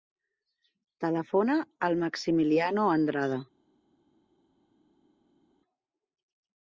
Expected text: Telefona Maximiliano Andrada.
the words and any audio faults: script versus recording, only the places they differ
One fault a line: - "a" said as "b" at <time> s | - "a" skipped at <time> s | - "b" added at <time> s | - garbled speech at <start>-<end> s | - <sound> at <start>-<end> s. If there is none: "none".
- "al" added at 1.9 s